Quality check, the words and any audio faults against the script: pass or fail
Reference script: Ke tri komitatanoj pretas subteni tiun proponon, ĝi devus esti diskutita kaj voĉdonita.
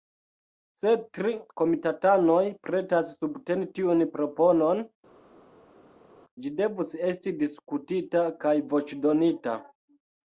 fail